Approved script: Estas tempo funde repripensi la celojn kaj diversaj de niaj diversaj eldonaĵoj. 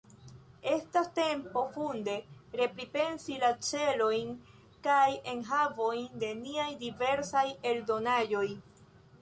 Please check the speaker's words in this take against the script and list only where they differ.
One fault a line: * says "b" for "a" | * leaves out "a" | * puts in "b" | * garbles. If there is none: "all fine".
* says "enhavojn" for "diversaj"